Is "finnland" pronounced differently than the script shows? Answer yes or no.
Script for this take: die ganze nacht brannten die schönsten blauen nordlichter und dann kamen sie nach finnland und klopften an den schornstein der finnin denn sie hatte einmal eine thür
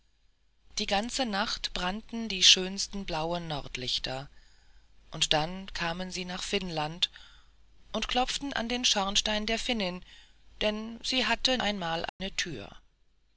no